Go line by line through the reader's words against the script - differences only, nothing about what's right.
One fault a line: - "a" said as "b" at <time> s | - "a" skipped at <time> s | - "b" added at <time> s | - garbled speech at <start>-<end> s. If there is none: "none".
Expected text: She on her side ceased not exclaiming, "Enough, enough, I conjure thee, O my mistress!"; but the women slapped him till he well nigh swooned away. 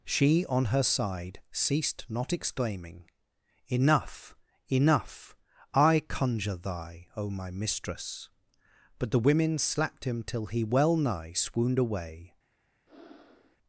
- "thee" said as "thy" at 6.6 s